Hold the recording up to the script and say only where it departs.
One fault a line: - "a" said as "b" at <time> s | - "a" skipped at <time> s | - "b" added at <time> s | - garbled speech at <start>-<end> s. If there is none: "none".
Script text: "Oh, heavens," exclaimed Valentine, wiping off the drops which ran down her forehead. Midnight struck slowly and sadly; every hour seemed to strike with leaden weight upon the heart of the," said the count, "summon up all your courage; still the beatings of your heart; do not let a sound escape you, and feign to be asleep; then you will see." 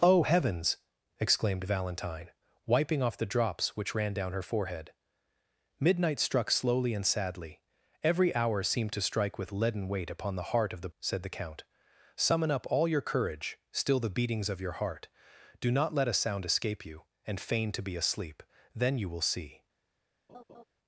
none